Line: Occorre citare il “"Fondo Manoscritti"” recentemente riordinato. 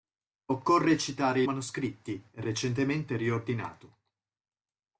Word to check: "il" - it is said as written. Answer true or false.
false